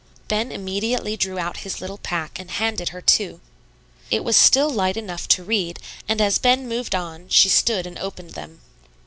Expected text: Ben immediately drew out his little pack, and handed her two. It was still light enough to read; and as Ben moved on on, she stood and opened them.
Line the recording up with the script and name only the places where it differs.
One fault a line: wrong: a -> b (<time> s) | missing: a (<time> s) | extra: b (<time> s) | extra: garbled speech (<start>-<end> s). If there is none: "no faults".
missing: on (7.3 s)